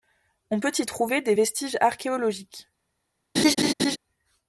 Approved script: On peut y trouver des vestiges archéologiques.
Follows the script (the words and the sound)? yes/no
no